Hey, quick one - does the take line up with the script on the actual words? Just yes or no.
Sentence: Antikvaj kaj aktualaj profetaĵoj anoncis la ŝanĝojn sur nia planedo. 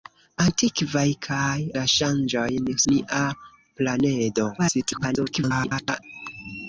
no